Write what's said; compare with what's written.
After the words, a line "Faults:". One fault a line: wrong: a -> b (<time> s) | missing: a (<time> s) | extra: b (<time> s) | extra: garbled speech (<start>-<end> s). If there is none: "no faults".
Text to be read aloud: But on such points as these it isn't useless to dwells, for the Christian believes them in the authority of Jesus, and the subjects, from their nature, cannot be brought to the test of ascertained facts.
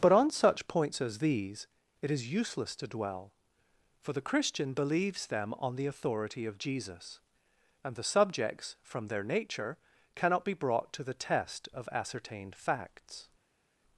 But on such points as these it is useless to dwell, for the Christian believes them on the authority of Jesus, and the subjects, from their nature, cannot be brought to the test of ascertained facts.
Faults:
wrong: isn't -> is (2.1 s)
wrong: dwells -> dwell (2.9 s)
wrong: in -> on (5.6 s)